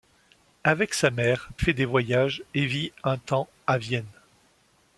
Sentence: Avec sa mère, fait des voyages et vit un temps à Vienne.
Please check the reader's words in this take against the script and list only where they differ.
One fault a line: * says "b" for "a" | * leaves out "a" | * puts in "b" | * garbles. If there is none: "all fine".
all fine